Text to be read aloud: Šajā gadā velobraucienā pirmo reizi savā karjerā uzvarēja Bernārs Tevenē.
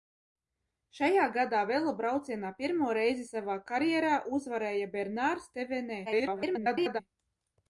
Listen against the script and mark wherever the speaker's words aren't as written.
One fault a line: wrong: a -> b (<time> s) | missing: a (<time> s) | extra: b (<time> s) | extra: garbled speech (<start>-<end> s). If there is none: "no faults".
extra: garbled speech (6.1-7.0 s)